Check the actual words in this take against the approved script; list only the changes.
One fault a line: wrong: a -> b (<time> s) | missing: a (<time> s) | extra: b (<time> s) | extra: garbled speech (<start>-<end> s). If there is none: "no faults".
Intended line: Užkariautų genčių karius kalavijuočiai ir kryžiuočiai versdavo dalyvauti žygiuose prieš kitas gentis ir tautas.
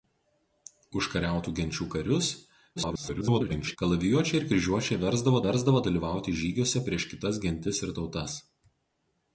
extra: garbled speech (2.8-3.8 s)
extra: versdavo (5.5 s)